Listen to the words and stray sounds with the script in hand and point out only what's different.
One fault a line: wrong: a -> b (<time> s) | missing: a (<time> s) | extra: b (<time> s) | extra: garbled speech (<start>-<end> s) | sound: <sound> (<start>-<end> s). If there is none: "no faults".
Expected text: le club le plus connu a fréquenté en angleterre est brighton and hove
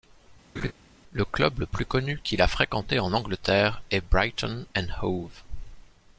sound: laugh (0.6-0.7 s)
extra: qu'il (2.2 s)